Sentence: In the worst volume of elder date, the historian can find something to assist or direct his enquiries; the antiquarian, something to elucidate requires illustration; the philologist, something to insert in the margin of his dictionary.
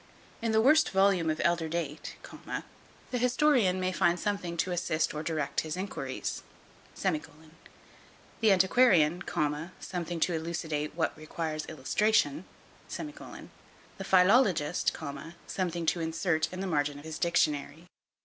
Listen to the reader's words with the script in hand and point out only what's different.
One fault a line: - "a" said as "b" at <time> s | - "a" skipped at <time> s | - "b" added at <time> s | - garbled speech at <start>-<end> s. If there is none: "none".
- "can" said as "may" at 3.8 s
- "what" added at 10.9 s